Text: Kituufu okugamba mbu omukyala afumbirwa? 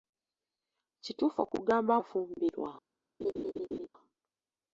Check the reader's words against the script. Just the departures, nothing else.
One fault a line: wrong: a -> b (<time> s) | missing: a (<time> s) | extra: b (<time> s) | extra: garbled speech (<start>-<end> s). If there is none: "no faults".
missing: mbu omukyala (1.9 s)